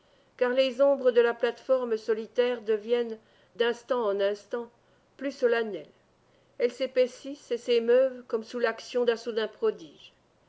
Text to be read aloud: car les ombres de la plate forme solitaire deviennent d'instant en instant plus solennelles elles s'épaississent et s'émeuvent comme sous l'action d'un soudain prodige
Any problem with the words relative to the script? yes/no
no